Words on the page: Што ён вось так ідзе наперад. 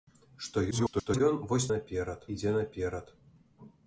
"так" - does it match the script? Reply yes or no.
no